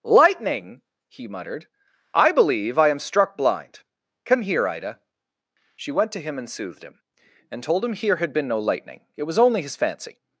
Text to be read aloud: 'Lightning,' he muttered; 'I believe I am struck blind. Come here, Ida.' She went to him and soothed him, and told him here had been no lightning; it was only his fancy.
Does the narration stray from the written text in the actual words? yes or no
no